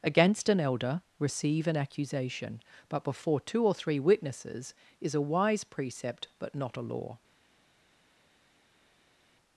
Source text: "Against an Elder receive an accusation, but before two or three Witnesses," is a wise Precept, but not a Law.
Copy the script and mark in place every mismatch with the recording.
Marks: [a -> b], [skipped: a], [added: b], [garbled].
"Against an Elder receive an accusation, but before two or three Witnesses," is a wise Precept, but not a Law.